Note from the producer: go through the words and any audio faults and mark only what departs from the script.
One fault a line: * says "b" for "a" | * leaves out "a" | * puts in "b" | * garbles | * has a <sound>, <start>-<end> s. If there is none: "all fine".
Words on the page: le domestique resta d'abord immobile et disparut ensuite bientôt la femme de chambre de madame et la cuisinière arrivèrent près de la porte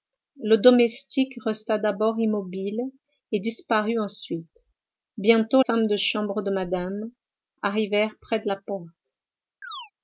* leaves out "la"
* leaves out "et la cuisinière"
* has a chirp, 9.6-9.9 s